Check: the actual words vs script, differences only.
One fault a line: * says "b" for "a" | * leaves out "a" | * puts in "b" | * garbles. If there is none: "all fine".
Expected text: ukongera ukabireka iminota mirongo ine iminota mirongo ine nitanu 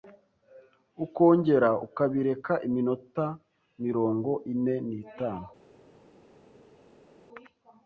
* leaves out "iminota mirongo ine"